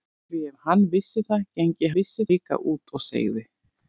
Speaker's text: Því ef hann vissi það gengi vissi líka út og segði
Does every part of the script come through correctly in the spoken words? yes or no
yes